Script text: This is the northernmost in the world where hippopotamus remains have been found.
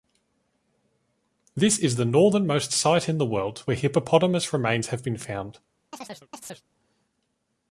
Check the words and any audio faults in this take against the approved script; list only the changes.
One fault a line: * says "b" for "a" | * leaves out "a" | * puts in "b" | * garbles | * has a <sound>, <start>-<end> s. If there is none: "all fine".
* puts in "site"
* has a chirp, 5.9-6.6 s